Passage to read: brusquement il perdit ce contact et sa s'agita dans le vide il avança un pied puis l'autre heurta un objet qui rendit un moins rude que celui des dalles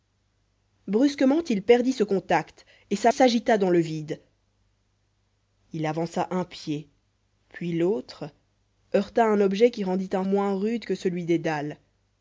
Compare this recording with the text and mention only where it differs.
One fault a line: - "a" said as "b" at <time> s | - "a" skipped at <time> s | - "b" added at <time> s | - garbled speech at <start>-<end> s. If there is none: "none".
none